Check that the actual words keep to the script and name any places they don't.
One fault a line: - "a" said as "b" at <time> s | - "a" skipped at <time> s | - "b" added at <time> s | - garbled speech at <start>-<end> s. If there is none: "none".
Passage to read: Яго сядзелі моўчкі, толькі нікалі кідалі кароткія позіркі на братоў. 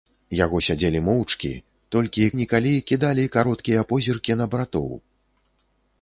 none